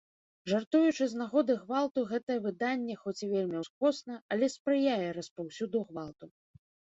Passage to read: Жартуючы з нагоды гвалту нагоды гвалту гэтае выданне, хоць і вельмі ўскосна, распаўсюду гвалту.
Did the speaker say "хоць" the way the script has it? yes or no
yes